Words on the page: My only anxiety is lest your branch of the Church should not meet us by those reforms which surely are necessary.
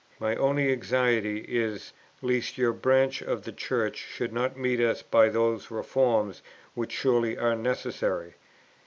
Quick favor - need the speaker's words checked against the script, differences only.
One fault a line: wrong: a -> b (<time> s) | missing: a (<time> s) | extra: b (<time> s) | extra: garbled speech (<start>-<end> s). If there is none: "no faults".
no faults